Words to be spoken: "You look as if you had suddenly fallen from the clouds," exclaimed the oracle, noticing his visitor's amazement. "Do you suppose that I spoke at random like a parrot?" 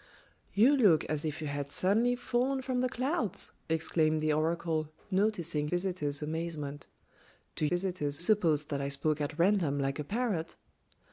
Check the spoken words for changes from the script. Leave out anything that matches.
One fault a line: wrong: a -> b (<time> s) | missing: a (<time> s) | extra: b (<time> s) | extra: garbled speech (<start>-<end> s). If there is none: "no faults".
missing: his (5.7 s)
wrong: you -> visitor's (7.7 s)